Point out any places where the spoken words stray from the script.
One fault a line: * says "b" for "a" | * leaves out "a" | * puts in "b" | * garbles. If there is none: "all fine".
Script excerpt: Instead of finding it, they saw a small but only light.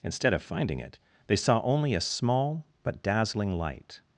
* puts in "only"
* says "dazzling" for "only"